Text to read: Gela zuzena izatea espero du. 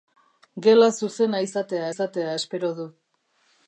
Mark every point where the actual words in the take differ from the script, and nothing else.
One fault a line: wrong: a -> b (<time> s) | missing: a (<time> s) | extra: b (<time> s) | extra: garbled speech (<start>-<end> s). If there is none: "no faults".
extra: izatea (1.9 s)